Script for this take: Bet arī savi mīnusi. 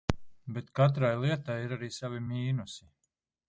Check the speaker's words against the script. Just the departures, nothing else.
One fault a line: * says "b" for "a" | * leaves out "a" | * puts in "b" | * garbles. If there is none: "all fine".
* puts in "katrai lietai ir"